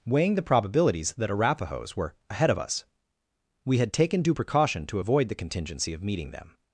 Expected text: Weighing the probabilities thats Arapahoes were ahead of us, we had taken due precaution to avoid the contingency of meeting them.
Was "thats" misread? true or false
true